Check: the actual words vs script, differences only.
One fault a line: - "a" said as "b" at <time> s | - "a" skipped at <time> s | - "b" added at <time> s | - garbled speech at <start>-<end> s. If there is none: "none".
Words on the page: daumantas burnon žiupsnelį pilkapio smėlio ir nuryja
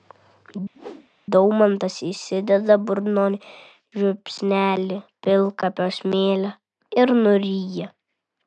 - "įsideda" added at 2.1 s